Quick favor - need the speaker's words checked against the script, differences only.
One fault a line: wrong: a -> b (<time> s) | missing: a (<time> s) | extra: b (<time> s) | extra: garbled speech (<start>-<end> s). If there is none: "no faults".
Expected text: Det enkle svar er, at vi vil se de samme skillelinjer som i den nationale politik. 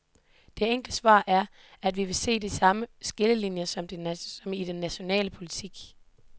no faults